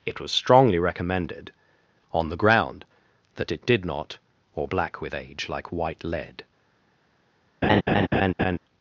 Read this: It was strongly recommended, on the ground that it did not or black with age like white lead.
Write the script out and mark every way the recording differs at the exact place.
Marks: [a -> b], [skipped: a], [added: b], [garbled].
It was strongly recommended, on the ground that it did not or black with age like white lead.